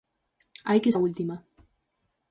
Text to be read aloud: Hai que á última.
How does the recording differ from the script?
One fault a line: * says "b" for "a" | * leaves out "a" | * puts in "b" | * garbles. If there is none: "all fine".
all fine